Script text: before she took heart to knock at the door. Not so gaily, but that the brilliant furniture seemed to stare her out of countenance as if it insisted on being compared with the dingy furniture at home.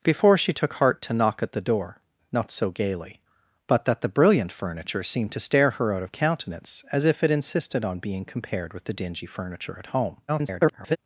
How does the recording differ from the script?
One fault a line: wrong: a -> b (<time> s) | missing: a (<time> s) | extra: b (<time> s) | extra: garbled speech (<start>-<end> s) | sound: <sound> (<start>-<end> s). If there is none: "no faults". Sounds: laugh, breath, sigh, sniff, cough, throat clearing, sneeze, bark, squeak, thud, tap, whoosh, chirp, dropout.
extra: garbled speech (10.3-11.0 s)